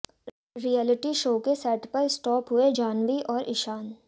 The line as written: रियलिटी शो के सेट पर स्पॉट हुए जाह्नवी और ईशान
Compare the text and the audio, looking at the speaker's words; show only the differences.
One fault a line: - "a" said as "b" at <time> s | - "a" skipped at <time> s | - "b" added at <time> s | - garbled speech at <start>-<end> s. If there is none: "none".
none